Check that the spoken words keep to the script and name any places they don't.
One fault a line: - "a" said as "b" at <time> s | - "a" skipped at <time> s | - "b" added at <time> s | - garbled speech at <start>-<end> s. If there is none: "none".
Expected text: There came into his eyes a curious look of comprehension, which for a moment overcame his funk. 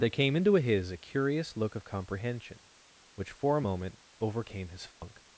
- "eyes" skipped at 0.9 s